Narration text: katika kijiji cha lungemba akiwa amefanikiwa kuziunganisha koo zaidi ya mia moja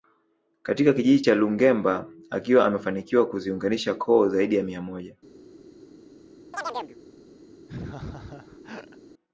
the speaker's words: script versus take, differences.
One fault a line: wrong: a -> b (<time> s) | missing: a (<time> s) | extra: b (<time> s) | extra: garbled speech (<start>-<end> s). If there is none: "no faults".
no faults